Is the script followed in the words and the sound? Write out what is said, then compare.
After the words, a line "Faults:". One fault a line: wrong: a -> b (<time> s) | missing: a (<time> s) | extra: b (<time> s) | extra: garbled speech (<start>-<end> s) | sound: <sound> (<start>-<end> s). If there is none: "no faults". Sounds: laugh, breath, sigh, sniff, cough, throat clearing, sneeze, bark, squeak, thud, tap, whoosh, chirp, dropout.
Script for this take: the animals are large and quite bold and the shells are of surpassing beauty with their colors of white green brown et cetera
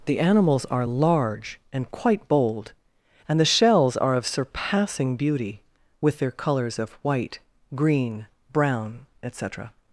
the animals are large and quite bold and the shells are of surpassing beauty with their colors of white green brown et cetera
Faults:
no faults